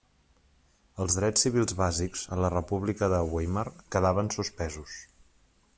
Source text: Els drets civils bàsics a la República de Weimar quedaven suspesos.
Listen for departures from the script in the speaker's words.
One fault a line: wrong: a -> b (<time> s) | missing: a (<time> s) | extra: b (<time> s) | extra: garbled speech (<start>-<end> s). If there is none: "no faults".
no faults